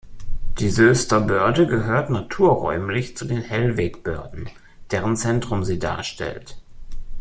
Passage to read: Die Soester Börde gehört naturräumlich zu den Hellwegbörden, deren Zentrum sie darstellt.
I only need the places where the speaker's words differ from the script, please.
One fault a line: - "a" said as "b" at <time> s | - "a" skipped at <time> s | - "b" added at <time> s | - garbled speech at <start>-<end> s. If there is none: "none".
none